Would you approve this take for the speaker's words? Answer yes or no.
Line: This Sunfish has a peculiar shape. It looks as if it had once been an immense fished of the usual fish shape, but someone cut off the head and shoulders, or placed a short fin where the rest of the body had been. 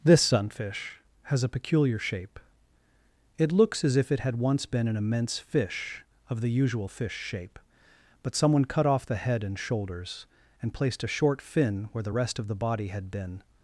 no